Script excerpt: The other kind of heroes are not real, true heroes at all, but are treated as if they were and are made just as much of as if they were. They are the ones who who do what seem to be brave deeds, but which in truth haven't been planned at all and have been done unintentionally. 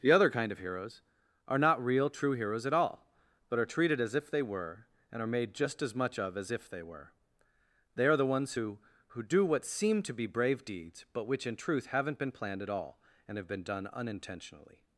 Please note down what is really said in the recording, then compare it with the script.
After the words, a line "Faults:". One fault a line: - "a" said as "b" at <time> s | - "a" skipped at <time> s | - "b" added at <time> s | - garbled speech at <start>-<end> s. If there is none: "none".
The other kind of heroes are not real, true heroes at all, but are treated as if they were and are made just as much of as if they were. They are the ones who who do what seem to be brave deeds, but which in truth haven't been planned at all and have been done unintentionally.
Faults:
none